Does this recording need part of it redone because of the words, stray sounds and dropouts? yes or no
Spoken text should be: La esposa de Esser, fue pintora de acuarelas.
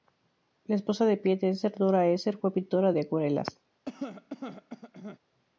yes